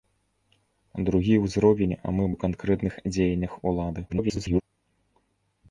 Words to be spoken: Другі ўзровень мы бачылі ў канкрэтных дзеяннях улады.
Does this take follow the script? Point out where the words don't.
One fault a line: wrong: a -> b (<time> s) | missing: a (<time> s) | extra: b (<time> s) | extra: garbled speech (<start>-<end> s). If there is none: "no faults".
missing: бачылі (2.2 s)
extra: garbled speech (4.1-4.6 s)